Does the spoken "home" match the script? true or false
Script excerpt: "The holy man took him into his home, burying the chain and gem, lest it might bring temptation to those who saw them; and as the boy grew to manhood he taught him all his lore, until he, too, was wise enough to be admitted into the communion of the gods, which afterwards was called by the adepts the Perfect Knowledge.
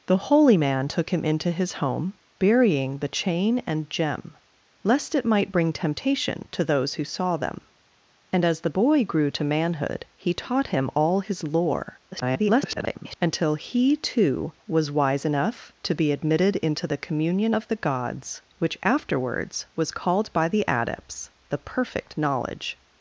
true